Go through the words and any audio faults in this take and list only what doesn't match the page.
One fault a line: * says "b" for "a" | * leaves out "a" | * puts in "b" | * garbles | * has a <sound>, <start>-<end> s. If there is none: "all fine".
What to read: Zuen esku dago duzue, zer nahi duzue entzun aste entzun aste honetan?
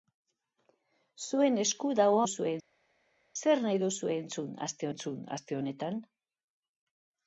all fine